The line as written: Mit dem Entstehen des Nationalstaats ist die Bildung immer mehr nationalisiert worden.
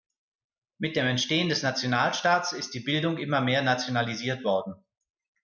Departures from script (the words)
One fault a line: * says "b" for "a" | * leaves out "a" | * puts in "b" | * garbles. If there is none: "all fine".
all fine